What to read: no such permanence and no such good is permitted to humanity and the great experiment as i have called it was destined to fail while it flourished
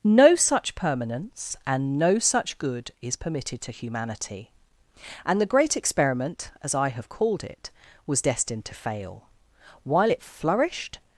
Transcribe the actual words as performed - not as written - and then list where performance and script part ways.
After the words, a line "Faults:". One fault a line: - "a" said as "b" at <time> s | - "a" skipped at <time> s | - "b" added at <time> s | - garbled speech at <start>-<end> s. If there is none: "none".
no such permanence and no such good is permitted to humanity and the great experiment as i have called it was destined to fail while it flourished
Faults:
none